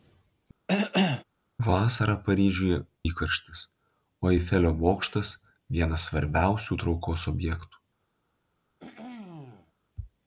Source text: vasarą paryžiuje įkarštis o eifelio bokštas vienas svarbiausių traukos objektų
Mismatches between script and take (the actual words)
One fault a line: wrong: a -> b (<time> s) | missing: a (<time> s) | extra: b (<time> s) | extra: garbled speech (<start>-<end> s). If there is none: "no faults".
no faults